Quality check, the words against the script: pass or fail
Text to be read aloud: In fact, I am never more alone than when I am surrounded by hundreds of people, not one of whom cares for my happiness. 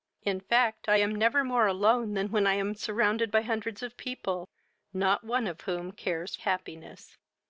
fail